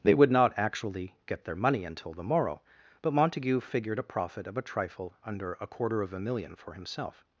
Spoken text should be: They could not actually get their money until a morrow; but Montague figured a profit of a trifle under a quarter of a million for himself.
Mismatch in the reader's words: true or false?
true